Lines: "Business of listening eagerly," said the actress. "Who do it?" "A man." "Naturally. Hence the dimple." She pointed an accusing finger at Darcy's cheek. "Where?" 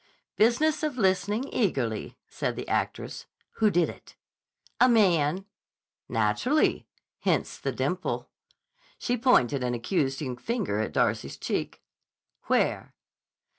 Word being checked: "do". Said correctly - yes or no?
no